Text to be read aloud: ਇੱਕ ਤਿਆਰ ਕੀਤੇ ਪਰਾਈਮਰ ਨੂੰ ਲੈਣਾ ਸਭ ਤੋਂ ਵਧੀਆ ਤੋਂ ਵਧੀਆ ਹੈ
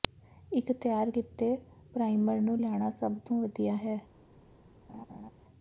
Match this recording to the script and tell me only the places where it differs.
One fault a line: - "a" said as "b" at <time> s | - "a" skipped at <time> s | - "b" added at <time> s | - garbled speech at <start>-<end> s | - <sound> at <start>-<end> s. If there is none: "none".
- "ਤੋਂ ਵਧੀਆ" skipped at 3.8 s
- laugh at 4.9-5.3 s